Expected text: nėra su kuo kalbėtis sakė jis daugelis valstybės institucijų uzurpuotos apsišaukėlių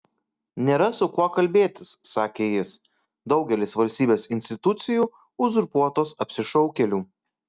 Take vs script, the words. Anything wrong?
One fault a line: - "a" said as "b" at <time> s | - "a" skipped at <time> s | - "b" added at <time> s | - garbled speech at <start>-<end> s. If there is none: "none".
none